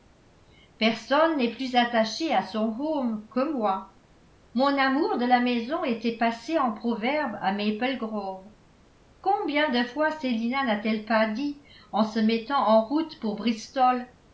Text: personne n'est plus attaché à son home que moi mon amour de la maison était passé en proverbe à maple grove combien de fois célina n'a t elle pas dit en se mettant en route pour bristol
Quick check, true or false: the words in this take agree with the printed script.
true